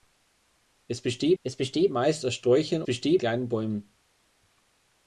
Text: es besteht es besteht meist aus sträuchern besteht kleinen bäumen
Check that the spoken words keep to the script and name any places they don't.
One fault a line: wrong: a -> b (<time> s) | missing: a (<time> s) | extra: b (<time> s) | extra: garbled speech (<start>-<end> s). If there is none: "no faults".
no faults